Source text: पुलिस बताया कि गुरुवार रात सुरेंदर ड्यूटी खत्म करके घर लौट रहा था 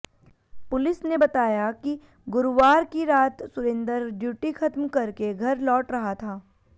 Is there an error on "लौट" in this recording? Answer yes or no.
no